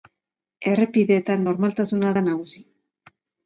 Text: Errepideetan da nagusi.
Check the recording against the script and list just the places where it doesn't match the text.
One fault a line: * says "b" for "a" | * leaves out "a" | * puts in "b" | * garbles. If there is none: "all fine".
* puts in "normaltasuna"